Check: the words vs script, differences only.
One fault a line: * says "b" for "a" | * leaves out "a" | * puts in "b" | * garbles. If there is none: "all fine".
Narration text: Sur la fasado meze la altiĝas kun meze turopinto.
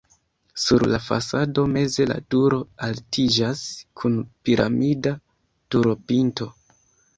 * puts in "turo"
* says "piramida" for "meze"